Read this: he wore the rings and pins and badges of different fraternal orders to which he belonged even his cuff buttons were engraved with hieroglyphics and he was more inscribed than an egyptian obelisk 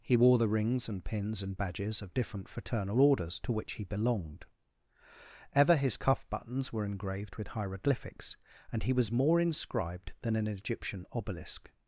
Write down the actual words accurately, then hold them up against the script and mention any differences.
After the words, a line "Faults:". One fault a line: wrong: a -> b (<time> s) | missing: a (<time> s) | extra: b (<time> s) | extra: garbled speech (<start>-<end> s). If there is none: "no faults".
he wore the rings and pins and badges of different fraternal orders to which he belonged ever his cuff buttons were engraved with hieroglyphics and he was more inscribed than an egyptian obelisk
Faults:
wrong: even -> ever (5.5 s)